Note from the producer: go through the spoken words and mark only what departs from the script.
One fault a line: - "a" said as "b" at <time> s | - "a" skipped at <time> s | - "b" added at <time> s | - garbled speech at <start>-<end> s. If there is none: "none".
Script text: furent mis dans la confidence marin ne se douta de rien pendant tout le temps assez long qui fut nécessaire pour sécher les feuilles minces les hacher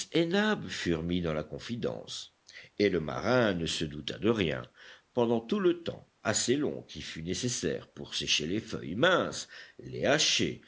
- "et le" added at 2.8 s